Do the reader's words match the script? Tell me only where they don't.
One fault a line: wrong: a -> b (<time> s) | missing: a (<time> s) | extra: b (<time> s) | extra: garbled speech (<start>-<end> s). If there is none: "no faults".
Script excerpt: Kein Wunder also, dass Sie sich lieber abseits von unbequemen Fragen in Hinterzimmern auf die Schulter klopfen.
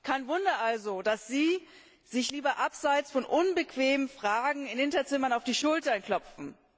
no faults